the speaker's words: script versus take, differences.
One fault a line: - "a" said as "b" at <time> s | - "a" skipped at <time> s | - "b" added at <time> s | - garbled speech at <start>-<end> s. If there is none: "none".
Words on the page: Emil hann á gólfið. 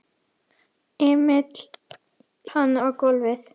none